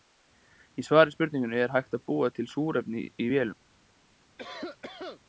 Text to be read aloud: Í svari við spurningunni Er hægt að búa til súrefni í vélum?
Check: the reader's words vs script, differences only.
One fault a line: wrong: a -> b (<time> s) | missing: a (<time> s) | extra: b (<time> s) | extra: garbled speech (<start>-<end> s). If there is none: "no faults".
no faults